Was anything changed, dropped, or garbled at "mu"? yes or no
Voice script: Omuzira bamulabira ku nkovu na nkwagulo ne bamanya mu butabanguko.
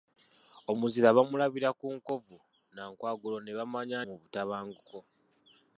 no